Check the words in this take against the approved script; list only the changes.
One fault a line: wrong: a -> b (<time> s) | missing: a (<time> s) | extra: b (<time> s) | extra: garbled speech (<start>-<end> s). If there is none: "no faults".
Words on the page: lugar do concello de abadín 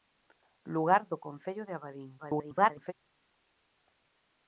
extra: garbled speech (2.2-2.9 s)